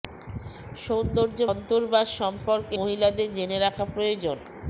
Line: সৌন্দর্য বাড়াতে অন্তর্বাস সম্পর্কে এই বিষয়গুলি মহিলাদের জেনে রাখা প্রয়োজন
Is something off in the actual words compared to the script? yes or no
yes